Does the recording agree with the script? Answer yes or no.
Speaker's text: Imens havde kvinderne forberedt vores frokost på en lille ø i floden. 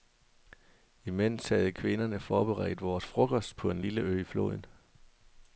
yes